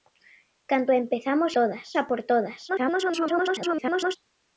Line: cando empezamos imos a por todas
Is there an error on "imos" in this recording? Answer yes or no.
yes